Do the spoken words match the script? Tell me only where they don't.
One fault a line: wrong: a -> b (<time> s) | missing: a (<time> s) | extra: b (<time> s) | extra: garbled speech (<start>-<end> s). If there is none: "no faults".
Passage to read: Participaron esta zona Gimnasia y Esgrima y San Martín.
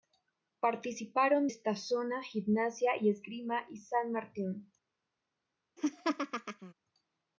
no faults